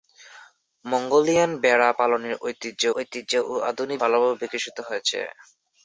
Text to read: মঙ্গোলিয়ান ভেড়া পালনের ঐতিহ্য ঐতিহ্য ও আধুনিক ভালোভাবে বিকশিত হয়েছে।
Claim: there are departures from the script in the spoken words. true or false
false